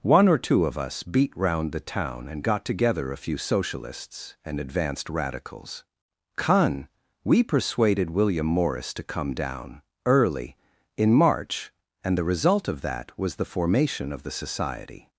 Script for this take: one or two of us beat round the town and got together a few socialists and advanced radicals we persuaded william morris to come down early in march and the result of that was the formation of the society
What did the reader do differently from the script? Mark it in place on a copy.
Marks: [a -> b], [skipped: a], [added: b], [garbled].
one or two of us beat round the town and got together a few socialists and advanced radicals [added: con] we persuaded william morris to come down early in march and the result of that was the formation of the society